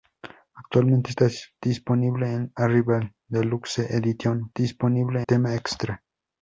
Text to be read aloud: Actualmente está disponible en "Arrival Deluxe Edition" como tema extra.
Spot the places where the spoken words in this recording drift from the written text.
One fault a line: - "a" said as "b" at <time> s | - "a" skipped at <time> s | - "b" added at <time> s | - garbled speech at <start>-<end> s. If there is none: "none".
- "como" said as "disponible" at 4.5 s